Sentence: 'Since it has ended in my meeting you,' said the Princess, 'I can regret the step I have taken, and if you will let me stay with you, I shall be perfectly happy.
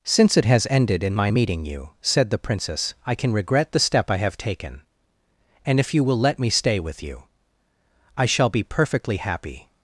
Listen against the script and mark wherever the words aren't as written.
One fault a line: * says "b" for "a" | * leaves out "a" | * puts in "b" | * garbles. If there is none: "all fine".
all fine